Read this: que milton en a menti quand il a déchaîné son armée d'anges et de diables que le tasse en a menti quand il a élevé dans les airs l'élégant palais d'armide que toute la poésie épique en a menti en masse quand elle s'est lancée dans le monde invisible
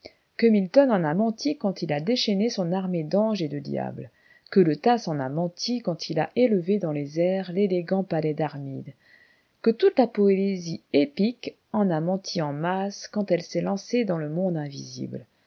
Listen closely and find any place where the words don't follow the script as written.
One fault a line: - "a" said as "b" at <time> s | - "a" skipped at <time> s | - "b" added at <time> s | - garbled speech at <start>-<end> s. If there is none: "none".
none